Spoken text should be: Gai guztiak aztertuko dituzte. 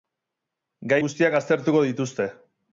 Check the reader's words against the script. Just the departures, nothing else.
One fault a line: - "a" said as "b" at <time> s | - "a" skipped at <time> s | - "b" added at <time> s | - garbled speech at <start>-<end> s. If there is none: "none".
none